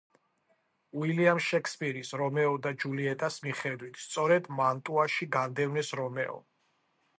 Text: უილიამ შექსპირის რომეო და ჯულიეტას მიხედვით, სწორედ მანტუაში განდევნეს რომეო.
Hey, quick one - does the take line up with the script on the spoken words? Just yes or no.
yes